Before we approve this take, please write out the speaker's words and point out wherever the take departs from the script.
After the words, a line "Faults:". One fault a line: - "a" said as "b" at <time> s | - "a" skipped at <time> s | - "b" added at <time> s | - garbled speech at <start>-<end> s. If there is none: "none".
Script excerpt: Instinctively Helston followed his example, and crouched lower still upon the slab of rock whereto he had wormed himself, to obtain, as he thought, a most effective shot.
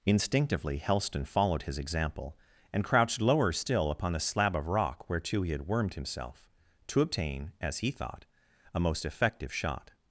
Instinctively Helston followed his example, and crouched lower still upon the slab of rock whereto he had wormed himself, to obtain, as he thought, a most effective shot.
Faults:
none